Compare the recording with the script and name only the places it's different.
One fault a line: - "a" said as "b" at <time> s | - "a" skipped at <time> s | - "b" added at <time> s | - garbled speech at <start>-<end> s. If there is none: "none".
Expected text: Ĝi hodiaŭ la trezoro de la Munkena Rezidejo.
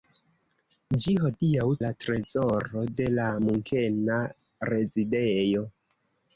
none